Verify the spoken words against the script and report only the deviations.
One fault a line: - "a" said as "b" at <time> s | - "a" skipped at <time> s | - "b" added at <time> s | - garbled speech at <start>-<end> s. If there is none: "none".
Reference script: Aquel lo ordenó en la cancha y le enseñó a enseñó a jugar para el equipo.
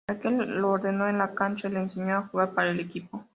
- "enseñó a" skipped at 2.3 s